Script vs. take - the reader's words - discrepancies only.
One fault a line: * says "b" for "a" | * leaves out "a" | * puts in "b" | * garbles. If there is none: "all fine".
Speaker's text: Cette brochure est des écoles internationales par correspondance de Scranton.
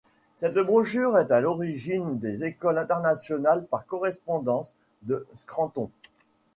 * puts in "à l'origine"